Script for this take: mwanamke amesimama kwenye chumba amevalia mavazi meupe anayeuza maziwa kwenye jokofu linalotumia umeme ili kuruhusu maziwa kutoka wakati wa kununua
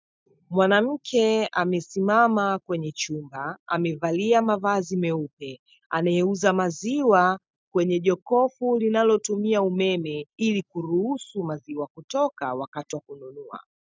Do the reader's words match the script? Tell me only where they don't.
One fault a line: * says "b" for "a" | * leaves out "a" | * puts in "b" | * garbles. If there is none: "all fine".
all fine